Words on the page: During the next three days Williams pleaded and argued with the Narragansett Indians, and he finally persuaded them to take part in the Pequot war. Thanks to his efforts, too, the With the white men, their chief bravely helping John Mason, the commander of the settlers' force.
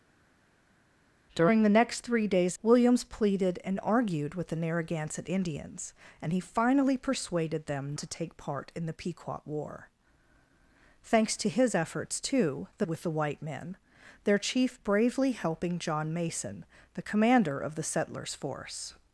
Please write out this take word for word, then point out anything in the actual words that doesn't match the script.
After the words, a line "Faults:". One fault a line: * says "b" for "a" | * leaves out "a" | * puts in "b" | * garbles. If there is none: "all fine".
During the next three days Williams pleaded and argued with the Narragansett Indians, and he finally persuaded them to take part in the Pequot war. Thanks to his efforts, too, the With the white men, their chief bravely helping John Mason, the commander of the settlers' force.
Faults:
all fine